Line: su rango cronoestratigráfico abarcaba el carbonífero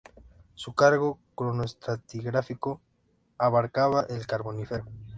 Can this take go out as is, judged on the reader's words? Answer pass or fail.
pass